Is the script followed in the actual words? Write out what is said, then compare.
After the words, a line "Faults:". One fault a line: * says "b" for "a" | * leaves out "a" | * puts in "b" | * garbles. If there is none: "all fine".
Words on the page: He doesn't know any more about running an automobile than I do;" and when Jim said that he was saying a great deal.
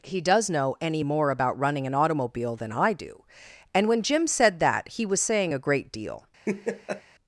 He does know any more about running an automobile than I do;" and when Jim said that he was saying a great deal.
Faults:
* says "does" for "doesn't"